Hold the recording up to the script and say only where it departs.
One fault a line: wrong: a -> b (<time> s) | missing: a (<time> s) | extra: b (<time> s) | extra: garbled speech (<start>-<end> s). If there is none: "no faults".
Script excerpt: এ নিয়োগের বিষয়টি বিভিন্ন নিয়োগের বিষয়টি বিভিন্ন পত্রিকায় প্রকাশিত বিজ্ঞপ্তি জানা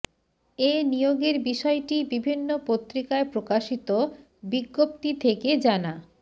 missing: নিয়োগের বিষয়টি বিভিন্ন (2.5 s)
extra: থেকে (5.2 s)